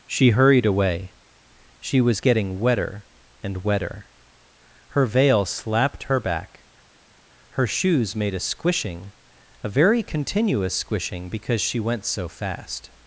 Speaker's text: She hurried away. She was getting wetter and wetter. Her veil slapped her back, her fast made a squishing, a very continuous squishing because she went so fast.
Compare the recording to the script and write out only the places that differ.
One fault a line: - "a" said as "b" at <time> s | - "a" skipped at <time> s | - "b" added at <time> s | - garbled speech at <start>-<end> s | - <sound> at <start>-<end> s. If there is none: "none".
- "fast" said as "shoes" at 7.7 s